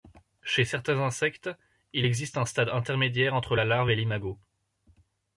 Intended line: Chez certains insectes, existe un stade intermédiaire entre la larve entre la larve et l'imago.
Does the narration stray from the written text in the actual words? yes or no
yes